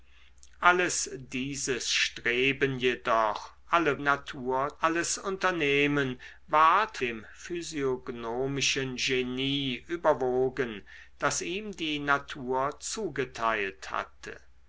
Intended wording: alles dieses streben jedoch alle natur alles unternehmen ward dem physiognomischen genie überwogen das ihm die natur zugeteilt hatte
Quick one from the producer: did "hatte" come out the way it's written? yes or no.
yes